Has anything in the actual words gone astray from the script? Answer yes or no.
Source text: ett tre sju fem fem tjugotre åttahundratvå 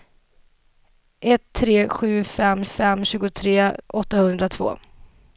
no